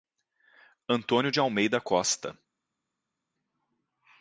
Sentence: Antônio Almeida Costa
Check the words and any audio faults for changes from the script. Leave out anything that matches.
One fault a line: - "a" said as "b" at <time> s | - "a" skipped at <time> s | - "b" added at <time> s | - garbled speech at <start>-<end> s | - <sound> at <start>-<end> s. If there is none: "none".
- "de" added at 1.3 s